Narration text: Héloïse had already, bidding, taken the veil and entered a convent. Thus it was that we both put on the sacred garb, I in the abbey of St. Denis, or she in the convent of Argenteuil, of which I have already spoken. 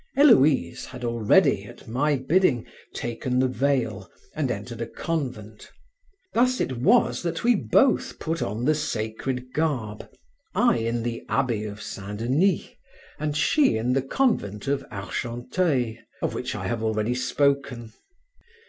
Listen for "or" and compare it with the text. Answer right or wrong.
wrong